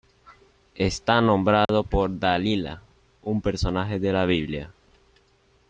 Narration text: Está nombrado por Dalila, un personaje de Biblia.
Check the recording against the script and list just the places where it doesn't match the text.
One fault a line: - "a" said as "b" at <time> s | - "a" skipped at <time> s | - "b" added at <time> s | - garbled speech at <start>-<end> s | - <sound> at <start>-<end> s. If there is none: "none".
- dropout at 1.7-1.7 s
- "la" added at 4.1 s